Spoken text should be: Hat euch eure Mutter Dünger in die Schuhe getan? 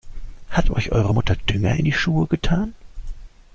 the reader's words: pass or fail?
pass